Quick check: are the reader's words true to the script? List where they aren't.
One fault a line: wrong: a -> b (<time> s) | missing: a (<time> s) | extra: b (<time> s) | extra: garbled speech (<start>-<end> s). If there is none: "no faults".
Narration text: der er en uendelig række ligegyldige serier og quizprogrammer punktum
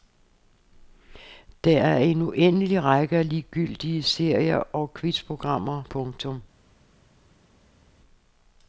extra: af (3.2 s)